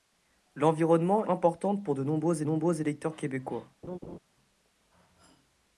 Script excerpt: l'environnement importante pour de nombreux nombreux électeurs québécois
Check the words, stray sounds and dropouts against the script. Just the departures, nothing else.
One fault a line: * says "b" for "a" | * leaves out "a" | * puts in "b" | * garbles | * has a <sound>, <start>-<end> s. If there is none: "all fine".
* has a laugh, 3.8-4.2 s